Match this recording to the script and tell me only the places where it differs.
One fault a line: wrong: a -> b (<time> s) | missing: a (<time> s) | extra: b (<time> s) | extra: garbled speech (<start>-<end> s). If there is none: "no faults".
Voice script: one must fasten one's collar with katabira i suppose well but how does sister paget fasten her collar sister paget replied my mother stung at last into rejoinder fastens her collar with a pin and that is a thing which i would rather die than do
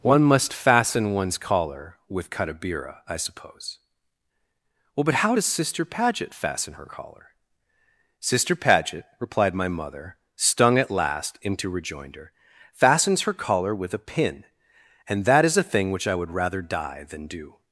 no faults